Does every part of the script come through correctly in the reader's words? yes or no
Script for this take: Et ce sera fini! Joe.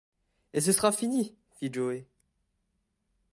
no